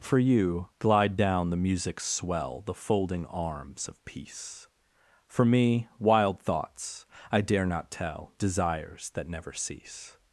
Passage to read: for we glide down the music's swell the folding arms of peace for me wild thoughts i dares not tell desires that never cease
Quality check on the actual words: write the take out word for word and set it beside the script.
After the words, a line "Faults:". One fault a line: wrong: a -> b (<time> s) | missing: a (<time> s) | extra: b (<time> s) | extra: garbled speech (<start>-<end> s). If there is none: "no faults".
for you glide down the music's swell the folding arms of peace for me wild thoughts i dare not tell desires that never cease
Faults:
wrong: we -> you (0.2 s)
wrong: dares -> dare (7.4 s)